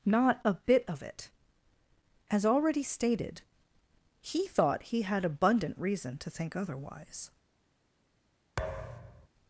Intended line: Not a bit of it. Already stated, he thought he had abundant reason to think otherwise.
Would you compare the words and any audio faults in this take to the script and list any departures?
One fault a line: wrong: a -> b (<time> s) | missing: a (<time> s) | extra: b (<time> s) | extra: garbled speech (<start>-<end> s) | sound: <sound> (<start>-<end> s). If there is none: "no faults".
extra: As (2.3 s)
sound: thud (8.6-9.3 s)